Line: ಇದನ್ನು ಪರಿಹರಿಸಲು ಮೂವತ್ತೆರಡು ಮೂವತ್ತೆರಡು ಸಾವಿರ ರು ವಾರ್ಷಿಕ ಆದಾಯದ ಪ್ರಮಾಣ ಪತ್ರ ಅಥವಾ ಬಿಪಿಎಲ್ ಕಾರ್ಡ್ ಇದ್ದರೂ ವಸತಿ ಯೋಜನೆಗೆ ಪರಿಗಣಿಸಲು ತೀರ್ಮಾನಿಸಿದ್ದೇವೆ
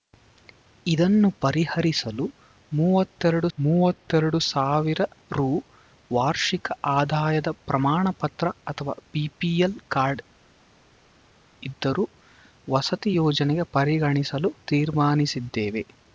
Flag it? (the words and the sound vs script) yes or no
no